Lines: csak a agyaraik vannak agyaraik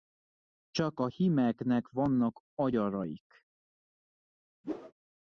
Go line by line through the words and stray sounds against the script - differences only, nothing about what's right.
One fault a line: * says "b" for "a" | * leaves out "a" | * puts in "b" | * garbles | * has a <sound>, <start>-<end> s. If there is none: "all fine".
* says "hímeknek" for "agyaraik"
* has a whoosh, 4.6-4.9 s